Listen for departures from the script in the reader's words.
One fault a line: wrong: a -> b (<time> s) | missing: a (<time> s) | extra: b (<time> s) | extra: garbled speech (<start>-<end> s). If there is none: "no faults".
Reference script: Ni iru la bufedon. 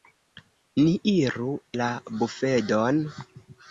no faults